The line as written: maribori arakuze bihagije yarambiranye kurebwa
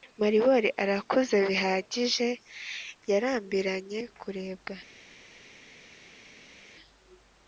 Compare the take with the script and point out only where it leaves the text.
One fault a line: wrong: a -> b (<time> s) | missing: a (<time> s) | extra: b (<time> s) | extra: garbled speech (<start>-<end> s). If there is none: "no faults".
no faults